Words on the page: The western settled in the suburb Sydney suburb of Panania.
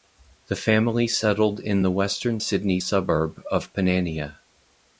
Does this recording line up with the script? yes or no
no